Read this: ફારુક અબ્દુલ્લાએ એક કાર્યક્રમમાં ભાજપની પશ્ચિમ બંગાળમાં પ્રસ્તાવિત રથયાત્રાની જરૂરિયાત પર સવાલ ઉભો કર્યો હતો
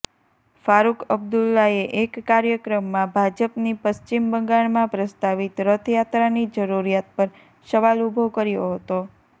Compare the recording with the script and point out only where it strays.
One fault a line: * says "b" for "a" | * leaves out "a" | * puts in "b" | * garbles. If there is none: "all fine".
all fine